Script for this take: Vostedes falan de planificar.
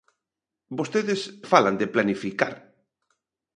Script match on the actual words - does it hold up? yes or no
yes